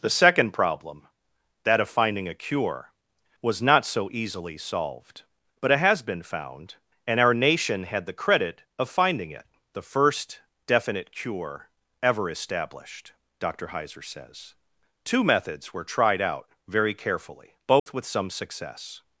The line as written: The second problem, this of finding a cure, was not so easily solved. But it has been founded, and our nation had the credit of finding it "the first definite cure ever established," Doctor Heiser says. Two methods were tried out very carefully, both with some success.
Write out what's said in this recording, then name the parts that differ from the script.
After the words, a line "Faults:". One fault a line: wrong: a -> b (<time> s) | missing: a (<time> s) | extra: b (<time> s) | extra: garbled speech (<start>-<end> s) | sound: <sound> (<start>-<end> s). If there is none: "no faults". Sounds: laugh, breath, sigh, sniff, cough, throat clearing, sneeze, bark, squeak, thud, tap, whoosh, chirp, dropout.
The second problem, that of finding a cure, was not so easily solved. But it has been found, and our nation had the credit of finding it "the first definite cure ever established," Doctor Heiser says. Two methods were tried out very carefully, both with some success.
Faults:
wrong: this -> that (1.6 s)
wrong: founded -> found (6.2 s)
sound: dropout (17.8-17.9 s)